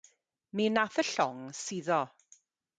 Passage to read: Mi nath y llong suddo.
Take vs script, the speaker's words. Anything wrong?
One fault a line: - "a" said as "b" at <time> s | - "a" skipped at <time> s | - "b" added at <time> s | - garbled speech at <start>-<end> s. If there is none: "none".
none